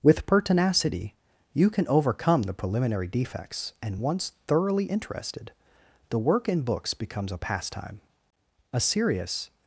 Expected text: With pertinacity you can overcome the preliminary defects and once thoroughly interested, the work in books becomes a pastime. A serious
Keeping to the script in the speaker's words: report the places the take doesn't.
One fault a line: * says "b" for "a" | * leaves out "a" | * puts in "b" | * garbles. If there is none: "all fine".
all fine